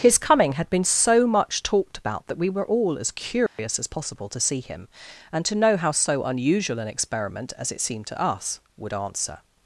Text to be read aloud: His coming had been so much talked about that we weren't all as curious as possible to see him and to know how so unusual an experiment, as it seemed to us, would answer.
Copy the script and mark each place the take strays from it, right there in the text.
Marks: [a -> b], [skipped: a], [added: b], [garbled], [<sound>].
His coming had been so much talked about that we [weren't -> were] all as curious [dropout] as possible to see him and to know how so unusual an experiment, as it seemed to us, would answer.